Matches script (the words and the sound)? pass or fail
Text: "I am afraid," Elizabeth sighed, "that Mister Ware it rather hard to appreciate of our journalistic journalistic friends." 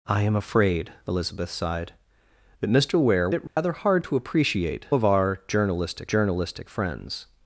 fail